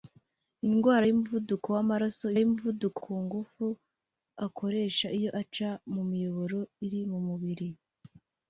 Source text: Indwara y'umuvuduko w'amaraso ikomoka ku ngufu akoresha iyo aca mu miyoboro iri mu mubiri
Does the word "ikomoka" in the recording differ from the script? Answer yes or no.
yes